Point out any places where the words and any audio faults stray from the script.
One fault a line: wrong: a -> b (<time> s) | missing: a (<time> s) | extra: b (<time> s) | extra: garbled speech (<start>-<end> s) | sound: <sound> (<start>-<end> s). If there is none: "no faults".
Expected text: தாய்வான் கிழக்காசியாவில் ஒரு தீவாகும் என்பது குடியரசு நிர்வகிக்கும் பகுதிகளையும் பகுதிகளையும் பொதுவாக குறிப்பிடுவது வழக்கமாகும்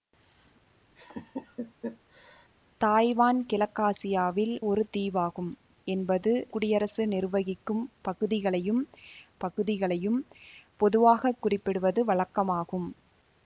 sound: laugh (1.0-2.5 s)